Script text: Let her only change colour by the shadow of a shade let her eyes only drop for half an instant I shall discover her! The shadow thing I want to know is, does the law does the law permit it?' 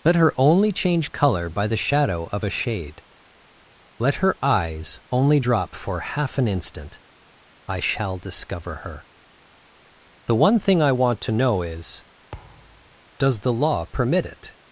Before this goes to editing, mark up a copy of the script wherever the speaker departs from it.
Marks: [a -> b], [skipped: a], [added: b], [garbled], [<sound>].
Let her only change colour by the shadow of a shade let her eyes only drop for half an instant I shall discover her! The [shadow -> one] thing I want to know is, [thud] does the law [skipped: does the law] permit it?'